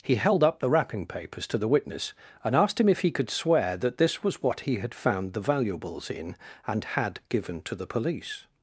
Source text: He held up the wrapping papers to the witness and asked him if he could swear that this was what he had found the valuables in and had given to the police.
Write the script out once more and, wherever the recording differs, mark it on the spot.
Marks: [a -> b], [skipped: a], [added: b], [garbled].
He held up the wrapping papers to the witness and asked him if he could swear that this was what he had found the valuables in and had given to the police.